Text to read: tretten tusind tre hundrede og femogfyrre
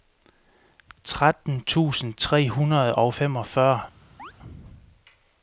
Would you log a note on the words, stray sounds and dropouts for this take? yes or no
yes